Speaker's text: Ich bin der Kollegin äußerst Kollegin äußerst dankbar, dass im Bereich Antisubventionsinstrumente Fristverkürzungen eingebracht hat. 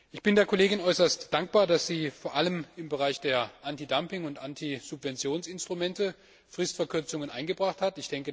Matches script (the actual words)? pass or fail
fail